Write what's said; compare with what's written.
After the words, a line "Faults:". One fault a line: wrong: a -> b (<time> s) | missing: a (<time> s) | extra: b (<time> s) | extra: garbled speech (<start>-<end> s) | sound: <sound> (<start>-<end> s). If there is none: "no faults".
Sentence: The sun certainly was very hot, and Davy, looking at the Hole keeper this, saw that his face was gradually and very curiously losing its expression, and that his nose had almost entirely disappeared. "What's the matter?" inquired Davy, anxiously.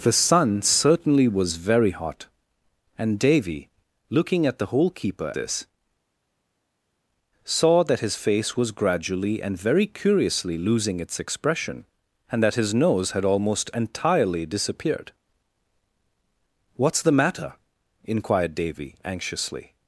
The sun certainly was very hot, and Davy, looking at the Hole keeper this, saw that his face was gradually and very curiously losing its expression, and that his nose had almost entirely disappeared. "What's the matter?" inquired Davy, anxiously.
Faults:
no faults